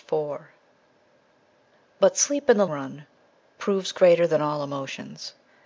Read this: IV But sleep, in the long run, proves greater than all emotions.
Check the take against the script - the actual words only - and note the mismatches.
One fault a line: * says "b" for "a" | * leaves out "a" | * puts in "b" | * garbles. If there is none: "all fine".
* leaves out "long"